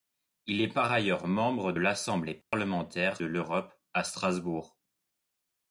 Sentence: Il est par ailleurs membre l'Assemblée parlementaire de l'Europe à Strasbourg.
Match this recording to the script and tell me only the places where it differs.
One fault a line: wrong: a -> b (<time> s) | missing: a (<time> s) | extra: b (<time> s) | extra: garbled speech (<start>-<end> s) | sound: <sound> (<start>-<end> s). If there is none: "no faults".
sound: dropout (2.4-2.5 s)